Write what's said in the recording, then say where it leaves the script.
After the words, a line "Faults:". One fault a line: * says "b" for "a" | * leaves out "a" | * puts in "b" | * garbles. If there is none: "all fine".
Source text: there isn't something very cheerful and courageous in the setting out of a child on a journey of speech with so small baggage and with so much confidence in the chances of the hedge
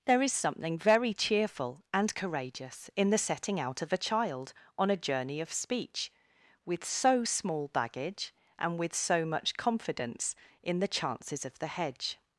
there is something very cheerful and courageous in the setting out of a child on a journey of speech with so small baggage and with so much confidence in the chances of the hedge
Faults:
* says "is" for "isn't"